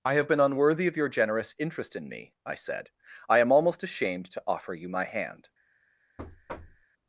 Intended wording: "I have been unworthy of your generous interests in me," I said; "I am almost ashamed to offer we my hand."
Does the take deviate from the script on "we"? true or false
true